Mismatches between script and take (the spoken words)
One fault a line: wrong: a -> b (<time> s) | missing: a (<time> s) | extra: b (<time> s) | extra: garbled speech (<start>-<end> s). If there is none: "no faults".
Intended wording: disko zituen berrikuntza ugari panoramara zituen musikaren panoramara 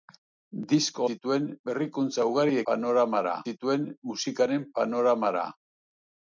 no faults